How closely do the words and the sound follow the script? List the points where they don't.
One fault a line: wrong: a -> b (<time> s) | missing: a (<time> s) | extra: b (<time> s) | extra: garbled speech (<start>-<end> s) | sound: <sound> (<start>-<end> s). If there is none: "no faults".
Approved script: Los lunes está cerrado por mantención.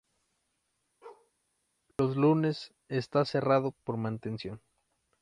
sound: bark (1.0-1.3 s)
sound: dropout (1.9-2.0 s)